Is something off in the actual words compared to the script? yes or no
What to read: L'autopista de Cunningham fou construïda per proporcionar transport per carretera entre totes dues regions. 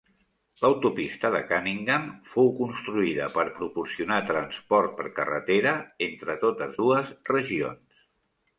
no